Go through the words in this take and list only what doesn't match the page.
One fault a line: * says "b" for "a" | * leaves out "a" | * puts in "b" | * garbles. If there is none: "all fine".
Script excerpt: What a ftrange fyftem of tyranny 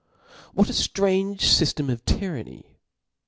all fine